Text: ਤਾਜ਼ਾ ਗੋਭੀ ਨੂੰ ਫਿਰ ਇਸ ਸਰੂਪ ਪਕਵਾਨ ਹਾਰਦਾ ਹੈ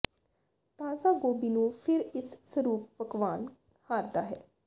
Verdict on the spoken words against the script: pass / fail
pass